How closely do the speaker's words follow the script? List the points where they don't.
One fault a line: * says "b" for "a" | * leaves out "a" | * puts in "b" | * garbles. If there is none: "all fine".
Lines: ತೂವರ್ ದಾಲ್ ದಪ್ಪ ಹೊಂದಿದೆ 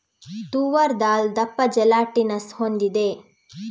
* puts in "ಜೆಲಾಟಿನಸ್"